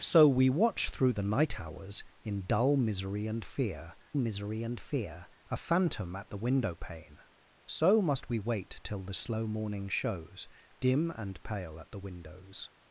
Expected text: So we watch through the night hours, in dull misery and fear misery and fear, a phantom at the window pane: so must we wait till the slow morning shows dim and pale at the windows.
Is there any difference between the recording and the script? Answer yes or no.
no